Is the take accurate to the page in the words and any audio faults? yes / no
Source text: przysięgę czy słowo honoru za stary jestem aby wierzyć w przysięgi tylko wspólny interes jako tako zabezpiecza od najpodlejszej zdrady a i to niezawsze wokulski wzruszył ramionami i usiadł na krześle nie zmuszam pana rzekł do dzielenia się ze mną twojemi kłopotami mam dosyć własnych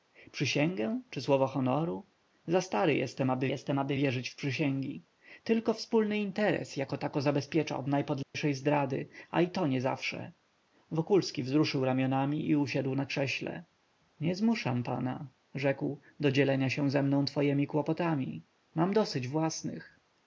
no